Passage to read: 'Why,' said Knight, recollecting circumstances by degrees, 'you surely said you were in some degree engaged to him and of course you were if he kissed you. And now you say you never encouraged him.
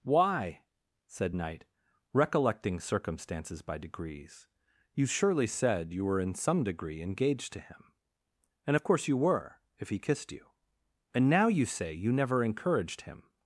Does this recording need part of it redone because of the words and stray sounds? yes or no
no